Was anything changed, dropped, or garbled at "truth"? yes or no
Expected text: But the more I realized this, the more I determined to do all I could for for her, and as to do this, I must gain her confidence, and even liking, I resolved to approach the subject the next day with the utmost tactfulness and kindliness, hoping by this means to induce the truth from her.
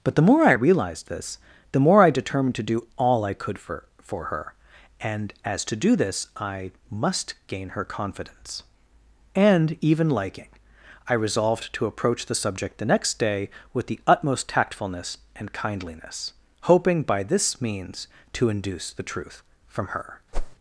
no